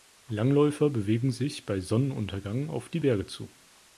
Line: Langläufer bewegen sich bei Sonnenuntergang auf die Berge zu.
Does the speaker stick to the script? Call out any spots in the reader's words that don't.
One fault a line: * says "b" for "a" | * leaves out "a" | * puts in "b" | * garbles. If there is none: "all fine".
all fine